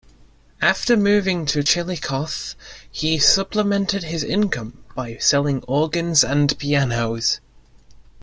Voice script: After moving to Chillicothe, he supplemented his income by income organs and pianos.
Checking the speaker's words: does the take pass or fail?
fail